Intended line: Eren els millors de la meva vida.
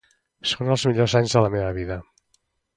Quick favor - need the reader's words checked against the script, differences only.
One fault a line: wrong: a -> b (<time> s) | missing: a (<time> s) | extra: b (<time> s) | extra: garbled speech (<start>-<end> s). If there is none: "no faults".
wrong: Eren -> Són (0.5 s)
extra: anys (1.2 s)